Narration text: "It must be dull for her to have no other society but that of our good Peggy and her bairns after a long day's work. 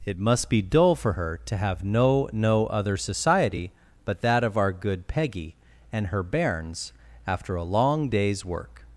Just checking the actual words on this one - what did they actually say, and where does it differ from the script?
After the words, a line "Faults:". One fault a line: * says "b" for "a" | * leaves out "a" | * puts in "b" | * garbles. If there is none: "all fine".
"It must be dull for her to have no no other society but that of our good Peggy and her bairns after a long day's work.
Faults:
* puts in "no"